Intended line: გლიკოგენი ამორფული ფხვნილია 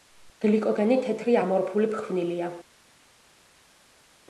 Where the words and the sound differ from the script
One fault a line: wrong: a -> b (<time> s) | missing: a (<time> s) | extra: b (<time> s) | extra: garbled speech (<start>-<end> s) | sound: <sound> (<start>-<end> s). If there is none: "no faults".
extra: თეთრი (1.0 s)